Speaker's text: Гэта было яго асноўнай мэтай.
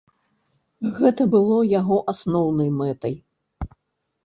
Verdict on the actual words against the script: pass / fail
pass